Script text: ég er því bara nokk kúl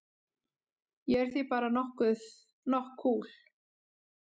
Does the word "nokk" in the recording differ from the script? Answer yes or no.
no